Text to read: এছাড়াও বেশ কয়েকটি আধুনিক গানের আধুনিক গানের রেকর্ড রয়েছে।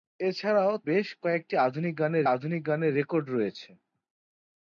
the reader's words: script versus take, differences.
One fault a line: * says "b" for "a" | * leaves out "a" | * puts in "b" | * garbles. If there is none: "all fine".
all fine